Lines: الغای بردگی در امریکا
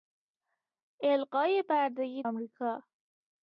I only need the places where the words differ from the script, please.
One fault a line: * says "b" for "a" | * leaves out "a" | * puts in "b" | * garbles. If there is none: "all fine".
* leaves out "در"